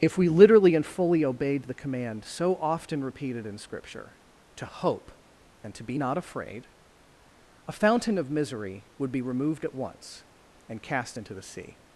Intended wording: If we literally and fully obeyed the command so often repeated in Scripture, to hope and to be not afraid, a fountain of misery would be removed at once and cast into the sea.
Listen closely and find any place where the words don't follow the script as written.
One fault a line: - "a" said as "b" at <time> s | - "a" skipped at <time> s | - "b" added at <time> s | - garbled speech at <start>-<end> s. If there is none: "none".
none